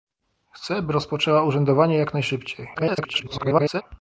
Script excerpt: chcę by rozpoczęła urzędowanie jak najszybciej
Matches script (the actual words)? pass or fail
fail